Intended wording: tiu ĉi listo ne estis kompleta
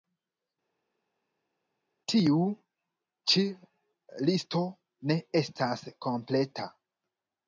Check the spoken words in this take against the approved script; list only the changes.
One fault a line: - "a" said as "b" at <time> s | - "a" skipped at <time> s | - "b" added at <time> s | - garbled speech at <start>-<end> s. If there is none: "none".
- "estis" said as "estas" at 5.4 s